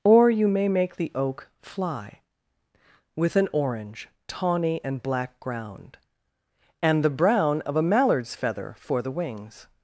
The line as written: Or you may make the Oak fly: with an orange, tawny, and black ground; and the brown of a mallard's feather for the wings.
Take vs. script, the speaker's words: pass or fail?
pass